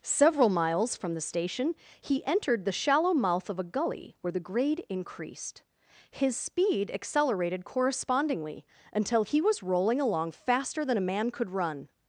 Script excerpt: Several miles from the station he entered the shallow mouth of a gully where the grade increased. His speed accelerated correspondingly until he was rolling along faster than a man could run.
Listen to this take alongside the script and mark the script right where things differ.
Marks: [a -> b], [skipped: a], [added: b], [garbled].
Several miles from the station he entered the shallow mouth of a gully where the grade increased. His speed accelerated correspondingly until he was rolling along faster than a man could run.